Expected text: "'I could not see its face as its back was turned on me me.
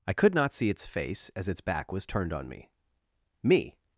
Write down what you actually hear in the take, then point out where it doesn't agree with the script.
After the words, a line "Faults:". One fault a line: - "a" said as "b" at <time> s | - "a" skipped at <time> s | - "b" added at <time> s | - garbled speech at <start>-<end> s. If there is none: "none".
"'I could not see its face as its back was turned on me me.
Faults:
none